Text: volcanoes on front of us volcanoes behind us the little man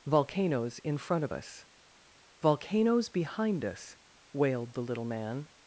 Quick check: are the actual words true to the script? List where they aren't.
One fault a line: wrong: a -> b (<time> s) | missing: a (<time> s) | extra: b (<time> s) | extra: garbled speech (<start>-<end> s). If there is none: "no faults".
wrong: on -> in (0.8 s)
extra: wailed (4.3 s)